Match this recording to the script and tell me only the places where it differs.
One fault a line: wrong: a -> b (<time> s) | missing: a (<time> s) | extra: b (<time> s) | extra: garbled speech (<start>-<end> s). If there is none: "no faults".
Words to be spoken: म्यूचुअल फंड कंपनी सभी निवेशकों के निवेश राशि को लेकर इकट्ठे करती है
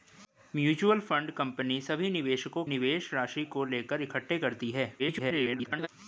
missing: के (2.6 s)
extra: garbled speech (5.0-5.9 s)